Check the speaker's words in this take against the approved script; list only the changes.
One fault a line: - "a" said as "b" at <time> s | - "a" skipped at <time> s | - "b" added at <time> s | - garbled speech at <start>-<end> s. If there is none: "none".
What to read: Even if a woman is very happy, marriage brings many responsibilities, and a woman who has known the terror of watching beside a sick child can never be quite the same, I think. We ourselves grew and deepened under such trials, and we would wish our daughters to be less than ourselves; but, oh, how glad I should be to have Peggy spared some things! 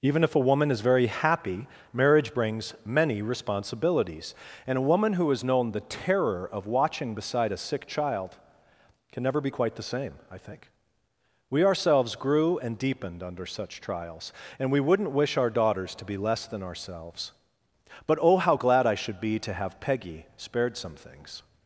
- "would" said as "wouldn't" at 14.8 s